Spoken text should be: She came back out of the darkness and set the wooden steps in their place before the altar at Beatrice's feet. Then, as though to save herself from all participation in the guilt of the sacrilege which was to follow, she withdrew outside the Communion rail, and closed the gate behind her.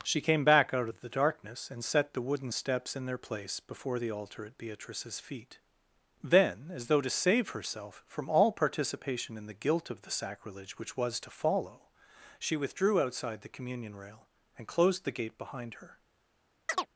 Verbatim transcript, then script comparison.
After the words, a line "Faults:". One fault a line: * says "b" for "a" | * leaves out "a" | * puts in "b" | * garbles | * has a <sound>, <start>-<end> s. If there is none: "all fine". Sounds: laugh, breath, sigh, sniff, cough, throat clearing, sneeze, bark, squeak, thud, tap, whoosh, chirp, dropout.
She came back out of the darkness and set the wooden steps in their place before the altar at Beatrice's feet. Then, as though to save herself from all participation in the guilt of the sacrilege which was to follow, she withdrew outside the Communion rail, and closed the gate behind her.
Faults:
* has a chirp, 16.7-16.9 s